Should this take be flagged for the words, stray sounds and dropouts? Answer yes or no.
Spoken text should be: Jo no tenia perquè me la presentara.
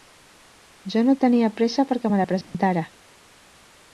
yes